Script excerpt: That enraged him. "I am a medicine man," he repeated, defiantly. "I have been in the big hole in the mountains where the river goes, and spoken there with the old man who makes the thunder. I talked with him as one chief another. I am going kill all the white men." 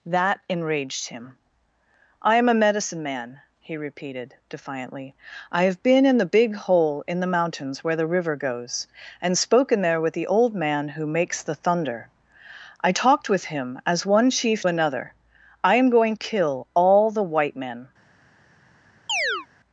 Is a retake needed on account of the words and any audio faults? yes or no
yes